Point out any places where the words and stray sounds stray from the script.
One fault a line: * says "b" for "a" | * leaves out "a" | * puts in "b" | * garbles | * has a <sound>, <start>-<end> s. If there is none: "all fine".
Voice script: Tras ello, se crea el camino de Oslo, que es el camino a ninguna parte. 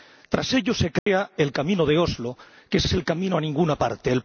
* has a dropout, 1.0-1.1 s
* puts in "es"